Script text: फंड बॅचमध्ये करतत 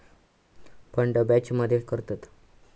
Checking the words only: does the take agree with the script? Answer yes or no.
yes